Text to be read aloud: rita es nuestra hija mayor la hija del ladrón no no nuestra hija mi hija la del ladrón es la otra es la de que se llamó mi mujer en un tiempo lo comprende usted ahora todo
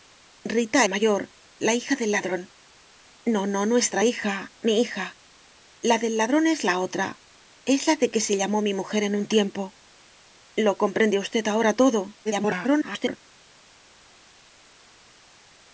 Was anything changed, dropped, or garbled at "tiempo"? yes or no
no